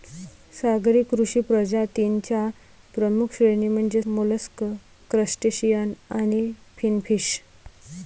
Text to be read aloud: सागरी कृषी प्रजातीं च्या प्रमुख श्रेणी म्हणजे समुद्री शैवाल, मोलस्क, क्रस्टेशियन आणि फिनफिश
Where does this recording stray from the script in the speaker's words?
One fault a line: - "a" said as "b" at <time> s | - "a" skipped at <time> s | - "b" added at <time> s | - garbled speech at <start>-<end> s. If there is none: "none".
- "समुद्री शैवाल" skipped at 4.0 s